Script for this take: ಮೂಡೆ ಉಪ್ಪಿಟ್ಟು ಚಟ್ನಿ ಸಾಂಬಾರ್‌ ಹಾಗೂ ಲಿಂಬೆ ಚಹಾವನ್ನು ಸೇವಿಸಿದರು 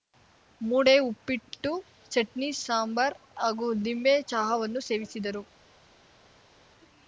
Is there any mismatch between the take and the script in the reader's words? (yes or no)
no